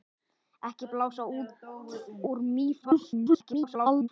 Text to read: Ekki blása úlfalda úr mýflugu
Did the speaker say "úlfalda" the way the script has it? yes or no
no